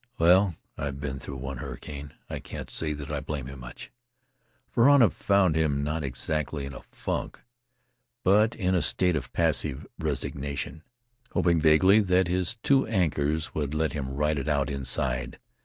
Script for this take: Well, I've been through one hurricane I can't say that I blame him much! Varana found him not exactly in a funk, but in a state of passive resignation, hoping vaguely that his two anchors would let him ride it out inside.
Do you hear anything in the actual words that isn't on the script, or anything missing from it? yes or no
no